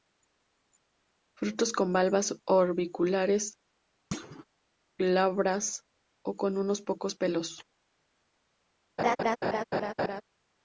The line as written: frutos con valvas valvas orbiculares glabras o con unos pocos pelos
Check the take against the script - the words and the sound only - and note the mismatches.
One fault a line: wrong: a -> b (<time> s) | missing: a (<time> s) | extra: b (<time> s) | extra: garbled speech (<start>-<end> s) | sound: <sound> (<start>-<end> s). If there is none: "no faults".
missing: valvas (2.4 s)
sound: thud (4.1-4.4 s)
sound: laugh (9.0-10.2 s)